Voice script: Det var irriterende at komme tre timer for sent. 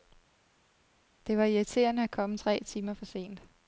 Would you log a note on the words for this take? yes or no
no